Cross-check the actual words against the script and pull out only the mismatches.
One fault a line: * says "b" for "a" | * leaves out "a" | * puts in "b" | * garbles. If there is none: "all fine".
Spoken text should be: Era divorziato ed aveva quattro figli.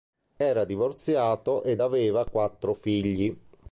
all fine